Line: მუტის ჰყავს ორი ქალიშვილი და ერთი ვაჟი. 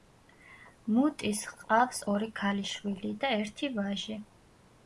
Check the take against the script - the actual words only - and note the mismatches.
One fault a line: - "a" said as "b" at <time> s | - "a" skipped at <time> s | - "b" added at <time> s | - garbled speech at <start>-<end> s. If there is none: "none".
none